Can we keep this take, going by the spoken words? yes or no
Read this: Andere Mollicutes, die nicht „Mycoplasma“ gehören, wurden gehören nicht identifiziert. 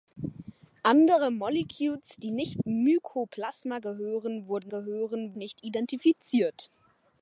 yes